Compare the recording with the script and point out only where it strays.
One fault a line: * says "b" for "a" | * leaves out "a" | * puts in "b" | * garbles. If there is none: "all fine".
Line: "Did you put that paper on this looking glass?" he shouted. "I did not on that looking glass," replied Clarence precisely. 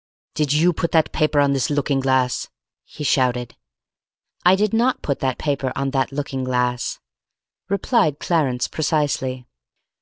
* puts in "put that paper"